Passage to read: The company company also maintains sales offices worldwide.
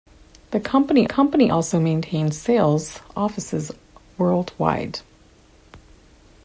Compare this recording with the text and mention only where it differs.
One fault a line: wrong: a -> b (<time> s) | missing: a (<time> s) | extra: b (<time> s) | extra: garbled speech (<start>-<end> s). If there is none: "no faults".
no faults